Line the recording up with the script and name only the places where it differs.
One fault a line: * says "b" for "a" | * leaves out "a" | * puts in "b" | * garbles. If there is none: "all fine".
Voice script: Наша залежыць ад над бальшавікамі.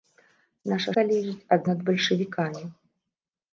all fine